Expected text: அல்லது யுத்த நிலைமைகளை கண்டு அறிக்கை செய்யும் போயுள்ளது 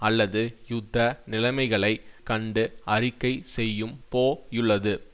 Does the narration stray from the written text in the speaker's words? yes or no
no